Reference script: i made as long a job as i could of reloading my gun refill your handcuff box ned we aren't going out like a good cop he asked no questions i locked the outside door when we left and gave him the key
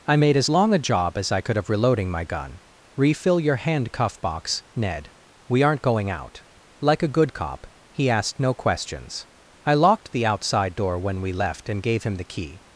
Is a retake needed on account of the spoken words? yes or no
no